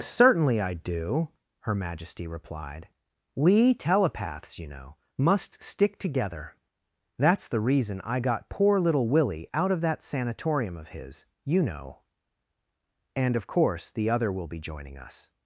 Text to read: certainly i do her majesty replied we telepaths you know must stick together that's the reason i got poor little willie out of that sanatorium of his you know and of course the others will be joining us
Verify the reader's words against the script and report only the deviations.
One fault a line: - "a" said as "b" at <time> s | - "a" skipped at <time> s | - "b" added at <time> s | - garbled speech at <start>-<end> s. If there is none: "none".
- "others" said as "other" at 14.1 s